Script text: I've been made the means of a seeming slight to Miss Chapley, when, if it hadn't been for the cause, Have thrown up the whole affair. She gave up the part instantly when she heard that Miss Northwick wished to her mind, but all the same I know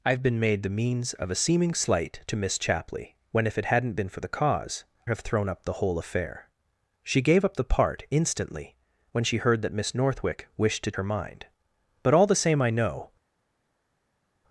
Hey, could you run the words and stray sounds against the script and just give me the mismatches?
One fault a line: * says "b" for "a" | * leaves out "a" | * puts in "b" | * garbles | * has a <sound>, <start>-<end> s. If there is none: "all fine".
all fine